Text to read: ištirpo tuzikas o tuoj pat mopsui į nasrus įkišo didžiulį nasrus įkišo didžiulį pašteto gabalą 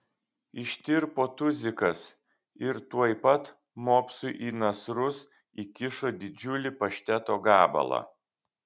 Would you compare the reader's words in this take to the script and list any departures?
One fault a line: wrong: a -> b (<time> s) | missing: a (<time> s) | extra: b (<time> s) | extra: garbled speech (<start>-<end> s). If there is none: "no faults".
wrong: o -> ir (2.7 s)
missing: nasrus įkišo didžiulį (6.8 s)